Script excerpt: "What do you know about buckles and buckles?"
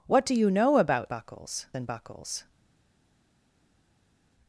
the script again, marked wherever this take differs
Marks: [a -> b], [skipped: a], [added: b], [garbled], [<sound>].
"What do you know about buckles and buckles?"